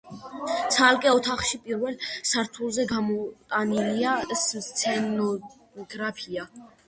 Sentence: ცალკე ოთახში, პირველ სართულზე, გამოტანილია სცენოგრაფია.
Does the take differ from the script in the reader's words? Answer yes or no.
no